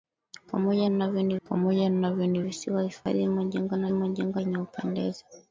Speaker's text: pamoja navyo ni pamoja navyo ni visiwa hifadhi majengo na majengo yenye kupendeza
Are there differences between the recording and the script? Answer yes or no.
no